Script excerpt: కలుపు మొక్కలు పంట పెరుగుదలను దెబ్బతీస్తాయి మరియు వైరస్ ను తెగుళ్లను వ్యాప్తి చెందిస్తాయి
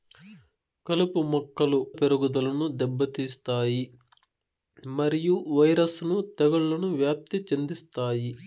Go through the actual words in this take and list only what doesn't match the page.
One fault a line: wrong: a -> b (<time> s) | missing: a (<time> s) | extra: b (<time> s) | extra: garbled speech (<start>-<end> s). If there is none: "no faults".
missing: పంట (1.8 s)